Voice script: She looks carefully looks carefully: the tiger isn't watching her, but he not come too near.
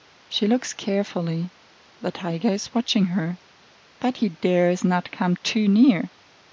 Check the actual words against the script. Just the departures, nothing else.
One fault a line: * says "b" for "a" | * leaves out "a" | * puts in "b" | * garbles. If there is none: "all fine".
* leaves out "looks carefully"
* says "is" for "isn't"
* puts in "dares"